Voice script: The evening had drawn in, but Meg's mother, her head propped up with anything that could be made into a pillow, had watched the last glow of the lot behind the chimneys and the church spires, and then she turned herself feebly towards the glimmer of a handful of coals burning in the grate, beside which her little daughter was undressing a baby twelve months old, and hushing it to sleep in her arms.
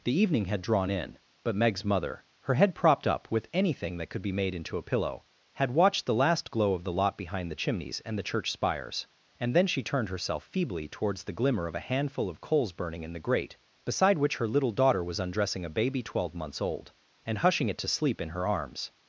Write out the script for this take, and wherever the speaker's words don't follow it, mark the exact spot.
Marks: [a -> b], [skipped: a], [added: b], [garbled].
The evening had drawn in, but Meg's mother, her head propped up with anything that could be made into a pillow, had watched the last glow of the lot behind the chimneys and the church spires, and then she turned herself feebly towards the glimmer of a handful of coals burning in the grate, beside which her little daughter was undressing a baby twelve months old, and hushing it to sleep in her arms.